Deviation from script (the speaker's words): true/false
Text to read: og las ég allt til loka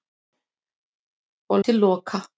true